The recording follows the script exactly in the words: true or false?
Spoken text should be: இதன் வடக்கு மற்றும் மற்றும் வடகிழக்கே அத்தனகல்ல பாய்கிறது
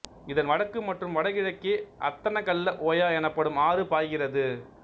false